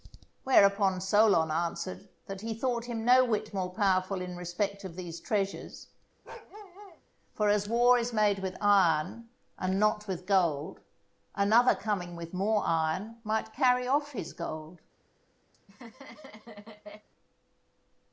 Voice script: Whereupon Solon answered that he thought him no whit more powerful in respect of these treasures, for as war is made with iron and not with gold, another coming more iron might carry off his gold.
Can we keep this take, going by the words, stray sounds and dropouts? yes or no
no